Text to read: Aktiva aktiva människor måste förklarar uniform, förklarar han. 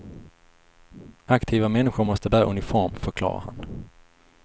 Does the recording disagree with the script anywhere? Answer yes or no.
yes